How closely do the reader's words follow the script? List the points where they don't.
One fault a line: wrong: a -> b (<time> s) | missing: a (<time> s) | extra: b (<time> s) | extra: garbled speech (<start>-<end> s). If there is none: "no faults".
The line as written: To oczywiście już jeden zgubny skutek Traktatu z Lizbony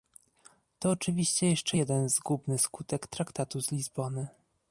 wrong: już -> jeszcze (1.5 s)